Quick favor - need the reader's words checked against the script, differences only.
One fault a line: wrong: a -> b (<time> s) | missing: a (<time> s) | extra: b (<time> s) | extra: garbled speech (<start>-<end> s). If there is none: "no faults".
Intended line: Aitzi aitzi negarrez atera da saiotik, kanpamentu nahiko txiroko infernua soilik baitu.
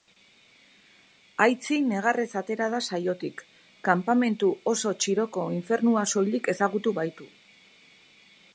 missing: aitzi (1.8 s)
wrong: nahiko -> oso (4.7 s)
extra: ezagutu (6.5 s)